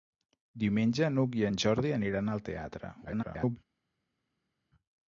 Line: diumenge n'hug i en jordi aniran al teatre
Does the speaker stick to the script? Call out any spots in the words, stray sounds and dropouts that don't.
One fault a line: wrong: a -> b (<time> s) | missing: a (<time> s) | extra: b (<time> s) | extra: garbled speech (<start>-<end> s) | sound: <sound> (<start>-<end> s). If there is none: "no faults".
extra: garbled speech (3.1-3.6 s)